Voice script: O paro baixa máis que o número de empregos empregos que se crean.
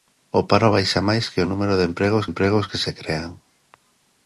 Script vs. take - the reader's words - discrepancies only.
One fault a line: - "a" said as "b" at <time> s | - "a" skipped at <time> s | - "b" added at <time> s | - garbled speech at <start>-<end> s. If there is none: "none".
none